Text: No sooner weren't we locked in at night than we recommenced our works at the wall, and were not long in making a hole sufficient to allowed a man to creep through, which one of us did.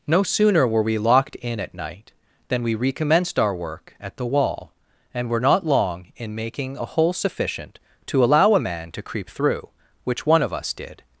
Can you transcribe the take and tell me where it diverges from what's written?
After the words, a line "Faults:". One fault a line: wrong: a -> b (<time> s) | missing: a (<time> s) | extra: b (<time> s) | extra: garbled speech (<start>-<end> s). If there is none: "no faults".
No sooner were we locked in at night than we recommenced our work at the wall, and were not long in making a hole sufficient to allow a man to creep through, which one of us did.
Faults:
wrong: weren't -> were (0.7 s)
wrong: works -> work (3.5 s)
wrong: allowed -> allow (8.2 s)